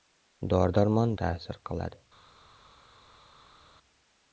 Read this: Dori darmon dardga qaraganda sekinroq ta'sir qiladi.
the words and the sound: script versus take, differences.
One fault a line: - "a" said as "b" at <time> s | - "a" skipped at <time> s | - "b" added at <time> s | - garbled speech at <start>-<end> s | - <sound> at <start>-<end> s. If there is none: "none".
- "dardga qaraganda sekinroq" skipped at 1.1 s